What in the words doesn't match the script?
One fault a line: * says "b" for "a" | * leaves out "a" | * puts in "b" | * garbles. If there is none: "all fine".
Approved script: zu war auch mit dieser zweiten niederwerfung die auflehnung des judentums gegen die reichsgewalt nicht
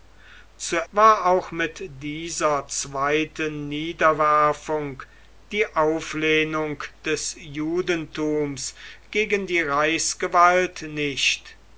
all fine